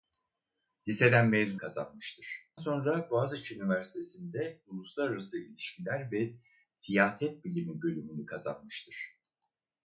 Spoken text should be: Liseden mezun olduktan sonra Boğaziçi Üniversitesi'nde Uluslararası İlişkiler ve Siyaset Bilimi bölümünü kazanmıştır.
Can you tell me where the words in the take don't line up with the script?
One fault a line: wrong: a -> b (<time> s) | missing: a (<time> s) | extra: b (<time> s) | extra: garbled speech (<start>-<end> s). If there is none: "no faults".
wrong: olduktan -> kazanmıştır (1.6 s)